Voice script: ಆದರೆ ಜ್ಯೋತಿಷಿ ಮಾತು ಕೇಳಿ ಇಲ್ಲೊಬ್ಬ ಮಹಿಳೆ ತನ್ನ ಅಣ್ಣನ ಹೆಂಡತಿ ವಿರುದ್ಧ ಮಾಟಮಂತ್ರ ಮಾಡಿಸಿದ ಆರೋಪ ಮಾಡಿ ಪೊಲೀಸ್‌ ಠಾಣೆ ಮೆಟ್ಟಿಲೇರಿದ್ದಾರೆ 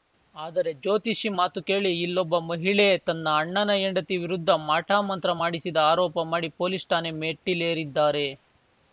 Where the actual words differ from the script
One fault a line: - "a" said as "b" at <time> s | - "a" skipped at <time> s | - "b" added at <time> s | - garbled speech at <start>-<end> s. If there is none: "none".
none